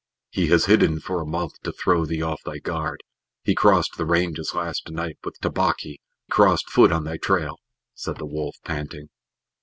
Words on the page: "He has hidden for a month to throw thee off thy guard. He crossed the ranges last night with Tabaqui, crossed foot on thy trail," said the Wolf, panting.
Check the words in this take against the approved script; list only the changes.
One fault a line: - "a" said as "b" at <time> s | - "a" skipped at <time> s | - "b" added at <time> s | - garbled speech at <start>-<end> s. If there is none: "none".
none